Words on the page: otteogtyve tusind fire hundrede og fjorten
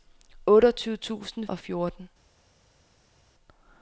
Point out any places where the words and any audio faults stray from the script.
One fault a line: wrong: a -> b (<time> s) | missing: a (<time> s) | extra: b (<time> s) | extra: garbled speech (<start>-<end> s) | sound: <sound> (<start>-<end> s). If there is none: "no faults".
missing: fire hundrede (1.5 s)